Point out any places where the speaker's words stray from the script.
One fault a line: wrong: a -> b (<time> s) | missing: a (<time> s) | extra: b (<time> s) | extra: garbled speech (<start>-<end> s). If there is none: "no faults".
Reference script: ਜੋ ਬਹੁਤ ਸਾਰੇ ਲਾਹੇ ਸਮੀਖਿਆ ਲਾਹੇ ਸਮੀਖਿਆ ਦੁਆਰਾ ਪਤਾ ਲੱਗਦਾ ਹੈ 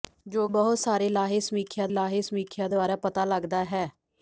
no faults